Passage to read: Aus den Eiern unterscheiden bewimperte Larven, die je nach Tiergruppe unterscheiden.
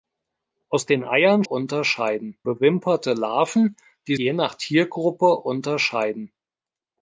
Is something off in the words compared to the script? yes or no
no